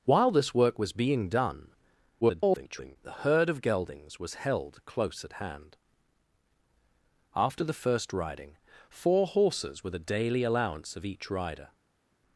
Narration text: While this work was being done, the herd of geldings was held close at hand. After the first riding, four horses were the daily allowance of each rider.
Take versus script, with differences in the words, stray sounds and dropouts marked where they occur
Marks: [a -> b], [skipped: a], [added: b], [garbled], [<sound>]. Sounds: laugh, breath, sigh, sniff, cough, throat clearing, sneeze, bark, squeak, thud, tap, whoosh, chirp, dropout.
While this work was being done, [garbled] the herd of geldings was held close at hand. After the first riding, four horses were the daily allowance of each rider.